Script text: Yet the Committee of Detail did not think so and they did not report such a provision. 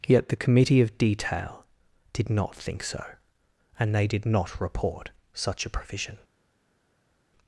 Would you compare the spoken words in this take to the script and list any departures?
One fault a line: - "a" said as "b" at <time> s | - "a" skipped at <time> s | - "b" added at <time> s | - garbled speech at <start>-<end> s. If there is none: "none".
none